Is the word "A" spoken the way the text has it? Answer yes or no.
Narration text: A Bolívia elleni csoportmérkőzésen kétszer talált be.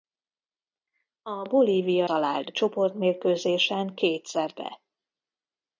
yes